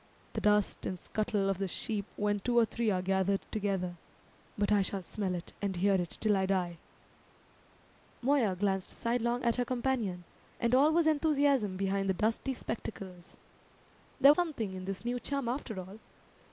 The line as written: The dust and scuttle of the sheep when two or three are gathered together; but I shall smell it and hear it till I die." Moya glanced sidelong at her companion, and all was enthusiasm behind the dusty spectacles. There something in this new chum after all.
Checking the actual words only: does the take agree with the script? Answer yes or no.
yes